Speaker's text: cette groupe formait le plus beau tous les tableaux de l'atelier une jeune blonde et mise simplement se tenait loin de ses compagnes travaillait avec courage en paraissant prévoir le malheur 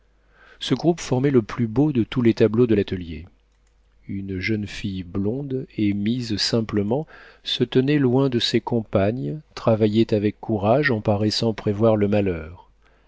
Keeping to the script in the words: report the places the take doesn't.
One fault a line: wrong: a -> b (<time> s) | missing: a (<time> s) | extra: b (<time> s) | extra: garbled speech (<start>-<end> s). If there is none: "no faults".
wrong: cette -> ce (0.6 s)
extra: de (1.9 s)
extra: fille (4.7 s)